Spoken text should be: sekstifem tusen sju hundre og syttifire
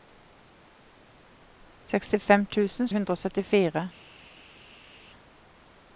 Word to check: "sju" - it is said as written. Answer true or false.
false